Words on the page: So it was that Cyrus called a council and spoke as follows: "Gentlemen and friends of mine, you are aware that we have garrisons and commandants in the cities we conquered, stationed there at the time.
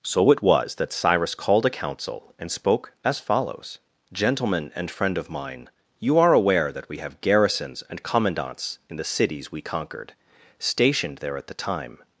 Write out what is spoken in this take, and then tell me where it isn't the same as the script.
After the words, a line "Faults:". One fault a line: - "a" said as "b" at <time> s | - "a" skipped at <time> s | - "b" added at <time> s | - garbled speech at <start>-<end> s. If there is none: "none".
So it was that Cyrus called a council and spoke as follows: "Gentlemen and friend of mine, you are aware that we have garrisons and commandants in the cities we conquered, stationed there at the time.
Faults:
- "friends" said as "friend" at 4.9 s